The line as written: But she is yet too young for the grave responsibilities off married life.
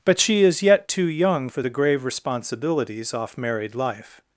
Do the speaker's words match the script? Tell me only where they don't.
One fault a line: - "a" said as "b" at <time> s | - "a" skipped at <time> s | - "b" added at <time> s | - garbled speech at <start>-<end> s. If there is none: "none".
none